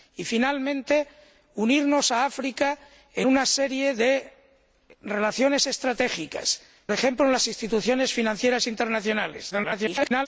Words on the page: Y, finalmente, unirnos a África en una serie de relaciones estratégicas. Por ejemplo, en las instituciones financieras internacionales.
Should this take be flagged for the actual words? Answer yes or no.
yes